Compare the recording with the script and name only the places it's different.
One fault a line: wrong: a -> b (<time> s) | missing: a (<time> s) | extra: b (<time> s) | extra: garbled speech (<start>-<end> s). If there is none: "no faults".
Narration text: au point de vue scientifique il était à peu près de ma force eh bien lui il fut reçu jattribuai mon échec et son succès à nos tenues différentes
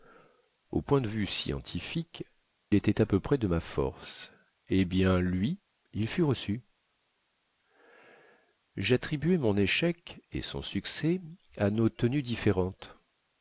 missing: il (2.2 s)